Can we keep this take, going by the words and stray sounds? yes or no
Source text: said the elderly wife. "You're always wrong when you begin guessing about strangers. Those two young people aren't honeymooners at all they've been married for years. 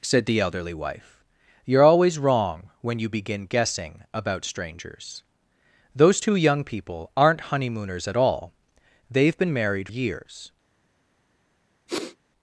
no